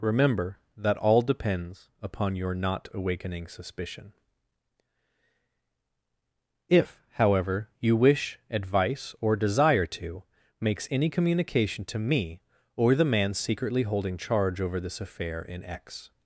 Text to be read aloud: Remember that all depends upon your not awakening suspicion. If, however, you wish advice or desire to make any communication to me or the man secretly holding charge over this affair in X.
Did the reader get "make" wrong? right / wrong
wrong